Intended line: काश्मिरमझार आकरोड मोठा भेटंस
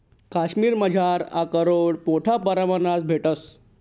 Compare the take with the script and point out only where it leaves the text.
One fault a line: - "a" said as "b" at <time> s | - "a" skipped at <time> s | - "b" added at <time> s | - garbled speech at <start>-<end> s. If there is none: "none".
- "परमाणमा" added at 2.4 s